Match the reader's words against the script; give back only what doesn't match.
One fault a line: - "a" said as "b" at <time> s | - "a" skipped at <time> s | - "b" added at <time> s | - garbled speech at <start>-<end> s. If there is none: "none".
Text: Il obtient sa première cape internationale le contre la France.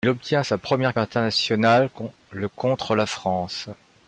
- "cape" skipped at 1.0 s